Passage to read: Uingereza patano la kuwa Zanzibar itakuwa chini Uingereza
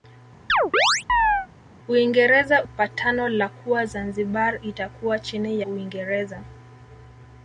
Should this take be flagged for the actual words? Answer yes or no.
no